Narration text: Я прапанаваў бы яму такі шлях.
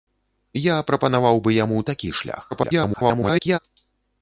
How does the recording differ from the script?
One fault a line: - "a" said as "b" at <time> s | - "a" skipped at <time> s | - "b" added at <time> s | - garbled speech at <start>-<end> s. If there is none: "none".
- garbled speech at 2.5-3.6 s